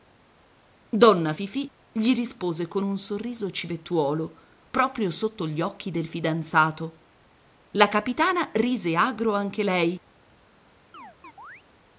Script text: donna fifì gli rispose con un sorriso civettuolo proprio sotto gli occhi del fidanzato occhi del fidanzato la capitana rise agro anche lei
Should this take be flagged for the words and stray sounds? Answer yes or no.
yes